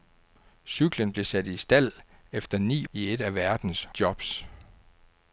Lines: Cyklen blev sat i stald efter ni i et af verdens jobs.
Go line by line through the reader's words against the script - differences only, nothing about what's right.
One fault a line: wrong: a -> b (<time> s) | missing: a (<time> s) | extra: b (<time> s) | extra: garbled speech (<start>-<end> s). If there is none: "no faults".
no faults